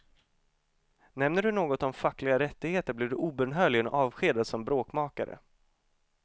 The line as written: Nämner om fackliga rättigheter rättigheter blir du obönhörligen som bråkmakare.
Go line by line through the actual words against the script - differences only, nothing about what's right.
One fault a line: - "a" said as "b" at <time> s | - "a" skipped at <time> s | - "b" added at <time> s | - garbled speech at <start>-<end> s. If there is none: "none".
- "du något" added at 1.4 s
- "rättigheter" skipped at 2.9 s
- "avskedad" added at 3.9 s